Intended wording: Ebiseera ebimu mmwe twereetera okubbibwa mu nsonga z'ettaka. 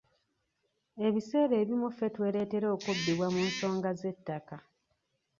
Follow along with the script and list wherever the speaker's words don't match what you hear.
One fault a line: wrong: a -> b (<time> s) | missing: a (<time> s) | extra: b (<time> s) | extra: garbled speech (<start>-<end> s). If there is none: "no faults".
wrong: mmwe -> ffe (1.9 s)